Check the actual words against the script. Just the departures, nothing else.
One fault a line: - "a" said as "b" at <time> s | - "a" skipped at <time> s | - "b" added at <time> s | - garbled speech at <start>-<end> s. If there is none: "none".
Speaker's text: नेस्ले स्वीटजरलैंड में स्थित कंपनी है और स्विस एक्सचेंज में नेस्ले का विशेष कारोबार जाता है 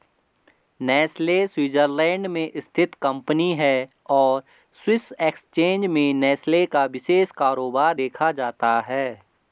- "देखा" added at 7.9 s